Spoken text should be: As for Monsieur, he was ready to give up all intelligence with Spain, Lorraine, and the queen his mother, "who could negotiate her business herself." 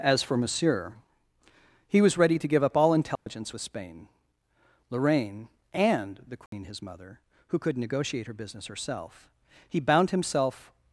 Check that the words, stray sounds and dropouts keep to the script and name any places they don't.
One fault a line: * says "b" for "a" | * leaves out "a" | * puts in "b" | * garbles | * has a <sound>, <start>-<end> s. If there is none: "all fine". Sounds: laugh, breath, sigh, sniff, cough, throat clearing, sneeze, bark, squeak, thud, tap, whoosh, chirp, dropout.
* has a dropout, 3.2-3.3 s
* has a dropout, 6.5-6.5 s
* puts in "He bound himself"